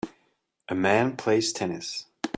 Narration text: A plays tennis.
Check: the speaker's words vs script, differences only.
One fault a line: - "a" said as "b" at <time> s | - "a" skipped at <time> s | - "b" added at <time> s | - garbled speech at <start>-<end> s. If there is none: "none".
- "man" added at 0.7 s